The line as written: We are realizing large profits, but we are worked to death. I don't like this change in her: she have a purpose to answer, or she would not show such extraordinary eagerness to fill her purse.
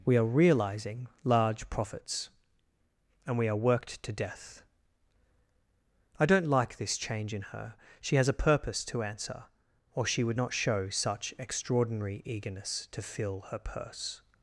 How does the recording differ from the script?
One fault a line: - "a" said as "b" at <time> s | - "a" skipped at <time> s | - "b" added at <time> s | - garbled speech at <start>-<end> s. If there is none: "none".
- "but" said as "and" at 3.3 s
- "have" said as "has" at 8.2 s